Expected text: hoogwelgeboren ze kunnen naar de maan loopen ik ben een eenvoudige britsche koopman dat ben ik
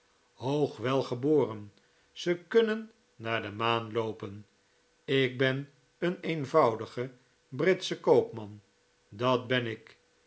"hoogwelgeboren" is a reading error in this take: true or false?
false